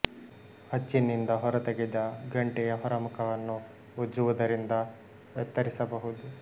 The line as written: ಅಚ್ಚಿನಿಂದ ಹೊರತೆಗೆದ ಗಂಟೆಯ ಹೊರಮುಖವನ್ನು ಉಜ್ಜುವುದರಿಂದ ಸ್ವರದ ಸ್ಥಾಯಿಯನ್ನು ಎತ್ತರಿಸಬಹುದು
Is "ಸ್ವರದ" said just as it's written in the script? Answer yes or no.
no